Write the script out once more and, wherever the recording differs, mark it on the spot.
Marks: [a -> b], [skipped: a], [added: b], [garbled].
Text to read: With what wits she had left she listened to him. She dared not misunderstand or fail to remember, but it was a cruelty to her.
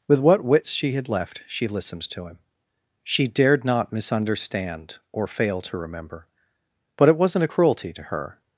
With what wits she had left she listened to him. She dared not misunderstand or fail to remember, but it [was -> wasn't] a cruelty to her.